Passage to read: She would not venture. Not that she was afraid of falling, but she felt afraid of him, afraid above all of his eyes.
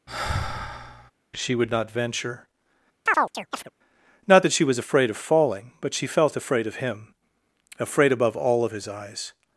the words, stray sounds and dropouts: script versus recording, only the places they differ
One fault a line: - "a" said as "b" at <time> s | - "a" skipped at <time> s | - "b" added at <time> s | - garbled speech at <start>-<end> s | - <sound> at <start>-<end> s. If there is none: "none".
- sigh at 0.1-1.1 s
- chirp at 3.1-3.7 s